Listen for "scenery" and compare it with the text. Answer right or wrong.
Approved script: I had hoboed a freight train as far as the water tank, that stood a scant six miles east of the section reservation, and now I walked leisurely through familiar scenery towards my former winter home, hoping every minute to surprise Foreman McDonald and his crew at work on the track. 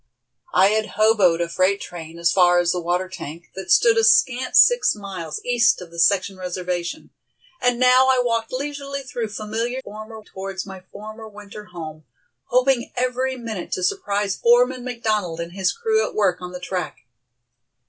wrong